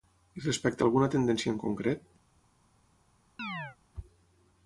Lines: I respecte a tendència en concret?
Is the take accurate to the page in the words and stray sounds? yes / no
no